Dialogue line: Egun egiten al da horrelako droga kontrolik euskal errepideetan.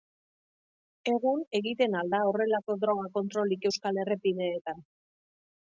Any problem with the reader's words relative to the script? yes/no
no